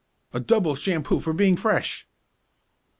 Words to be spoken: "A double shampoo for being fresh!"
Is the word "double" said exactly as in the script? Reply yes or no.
yes